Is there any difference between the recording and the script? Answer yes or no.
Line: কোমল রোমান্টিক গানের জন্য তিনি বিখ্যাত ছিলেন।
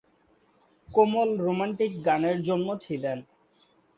yes